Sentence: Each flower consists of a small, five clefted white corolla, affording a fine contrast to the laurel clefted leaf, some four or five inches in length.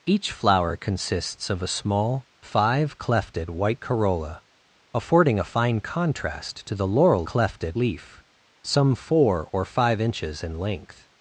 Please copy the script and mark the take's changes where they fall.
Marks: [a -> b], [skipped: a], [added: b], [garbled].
Each flower consists of a small, five clefted white corolla, affording a fine contrast to the laurel clefted leaf, some four or five inches in length.